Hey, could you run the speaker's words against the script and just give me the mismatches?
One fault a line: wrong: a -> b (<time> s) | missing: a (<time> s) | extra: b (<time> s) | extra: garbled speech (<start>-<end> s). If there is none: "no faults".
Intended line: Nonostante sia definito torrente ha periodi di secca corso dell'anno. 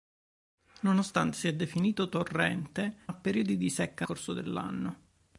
no faults